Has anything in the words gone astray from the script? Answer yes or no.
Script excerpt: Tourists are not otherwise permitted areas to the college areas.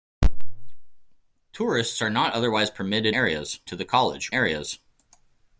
no